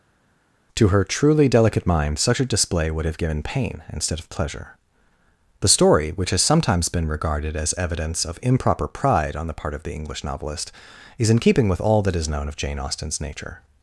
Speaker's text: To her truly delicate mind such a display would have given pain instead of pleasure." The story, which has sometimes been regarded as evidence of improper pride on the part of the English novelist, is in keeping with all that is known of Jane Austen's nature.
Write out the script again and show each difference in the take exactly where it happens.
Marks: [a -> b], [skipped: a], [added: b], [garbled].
To her truly delicate mind such a display would have given pain instead of pleasure." The story, which has sometimes been regarded as evidence of improper pride on the part of the English novelist, is in keeping with all that is known of Jane Austen's nature.